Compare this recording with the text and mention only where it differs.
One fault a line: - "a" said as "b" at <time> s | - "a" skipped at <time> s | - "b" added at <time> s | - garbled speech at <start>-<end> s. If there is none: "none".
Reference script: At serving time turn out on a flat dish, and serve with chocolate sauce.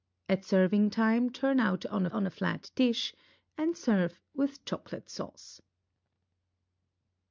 - "on" added at 2.1 s